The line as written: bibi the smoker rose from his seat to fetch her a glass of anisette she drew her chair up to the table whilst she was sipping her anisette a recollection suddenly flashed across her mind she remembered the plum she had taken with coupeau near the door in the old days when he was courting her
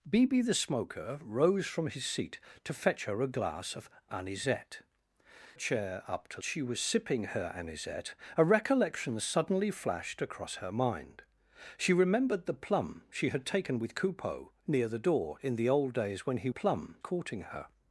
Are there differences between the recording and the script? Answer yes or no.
yes